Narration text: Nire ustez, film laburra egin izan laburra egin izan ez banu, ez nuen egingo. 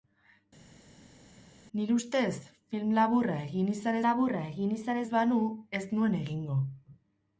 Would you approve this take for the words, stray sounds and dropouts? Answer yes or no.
yes